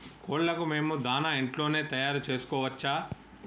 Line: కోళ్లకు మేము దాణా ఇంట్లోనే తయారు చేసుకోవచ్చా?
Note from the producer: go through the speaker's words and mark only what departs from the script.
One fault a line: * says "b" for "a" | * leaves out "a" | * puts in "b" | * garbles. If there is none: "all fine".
all fine